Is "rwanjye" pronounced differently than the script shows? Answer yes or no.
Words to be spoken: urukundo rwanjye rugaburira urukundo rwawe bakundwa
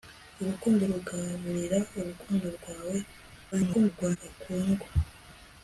yes